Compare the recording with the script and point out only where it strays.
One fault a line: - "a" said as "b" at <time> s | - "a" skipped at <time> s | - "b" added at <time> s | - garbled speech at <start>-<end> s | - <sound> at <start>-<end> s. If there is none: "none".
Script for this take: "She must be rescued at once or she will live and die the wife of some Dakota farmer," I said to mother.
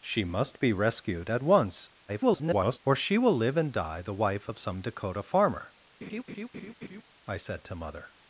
- garbled speech at 2.1-2.8 s
- laugh at 6.0-7.0 s